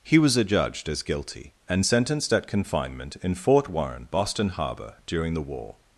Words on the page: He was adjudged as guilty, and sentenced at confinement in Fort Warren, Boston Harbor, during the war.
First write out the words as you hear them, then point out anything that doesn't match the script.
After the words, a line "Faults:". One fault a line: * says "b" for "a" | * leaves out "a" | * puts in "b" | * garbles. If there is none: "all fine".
He was adjudged as guilty, and sentenced at confinement in Fort Warren, Boston Harbor, during the war.
Faults:
all fine